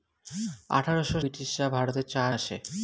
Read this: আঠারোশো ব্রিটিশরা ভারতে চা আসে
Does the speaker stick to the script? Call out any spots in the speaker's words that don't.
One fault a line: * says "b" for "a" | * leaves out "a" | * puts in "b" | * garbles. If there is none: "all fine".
all fine